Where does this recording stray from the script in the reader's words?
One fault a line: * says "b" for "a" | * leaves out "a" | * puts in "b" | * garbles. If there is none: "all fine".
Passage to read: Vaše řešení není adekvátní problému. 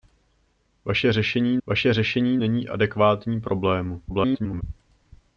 * puts in "vaše řešení"
* garbles